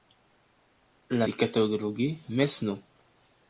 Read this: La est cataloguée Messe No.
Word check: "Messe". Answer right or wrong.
right